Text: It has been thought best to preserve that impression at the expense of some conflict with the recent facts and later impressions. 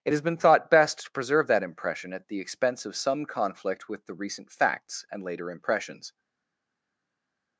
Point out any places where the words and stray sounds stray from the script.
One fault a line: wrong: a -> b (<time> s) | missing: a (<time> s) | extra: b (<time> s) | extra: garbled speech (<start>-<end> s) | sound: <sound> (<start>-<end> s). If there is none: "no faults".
no faults